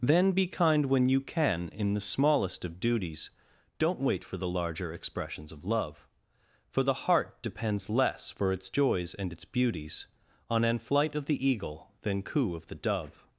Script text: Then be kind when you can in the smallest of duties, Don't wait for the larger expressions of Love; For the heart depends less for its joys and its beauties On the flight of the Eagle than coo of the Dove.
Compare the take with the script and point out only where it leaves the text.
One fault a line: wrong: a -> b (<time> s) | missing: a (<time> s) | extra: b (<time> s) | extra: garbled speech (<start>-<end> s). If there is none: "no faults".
wrong: the -> an (10.6 s)